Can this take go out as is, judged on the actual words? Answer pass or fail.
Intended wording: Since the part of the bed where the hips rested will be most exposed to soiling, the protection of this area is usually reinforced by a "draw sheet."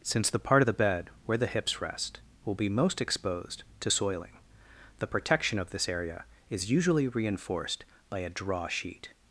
fail